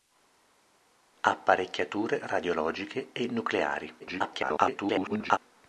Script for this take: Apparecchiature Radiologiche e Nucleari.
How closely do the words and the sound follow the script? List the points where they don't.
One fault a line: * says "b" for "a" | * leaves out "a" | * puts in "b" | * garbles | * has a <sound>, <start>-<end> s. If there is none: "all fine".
* garbles